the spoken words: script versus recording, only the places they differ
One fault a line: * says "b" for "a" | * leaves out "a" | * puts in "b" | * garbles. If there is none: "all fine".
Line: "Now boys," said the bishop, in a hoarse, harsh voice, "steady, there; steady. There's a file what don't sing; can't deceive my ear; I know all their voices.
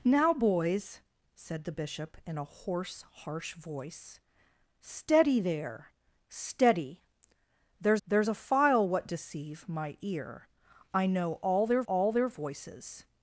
* puts in "there's"
* leaves out "don't sing can't"
* puts in "all their"